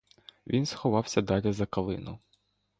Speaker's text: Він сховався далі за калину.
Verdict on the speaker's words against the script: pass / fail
pass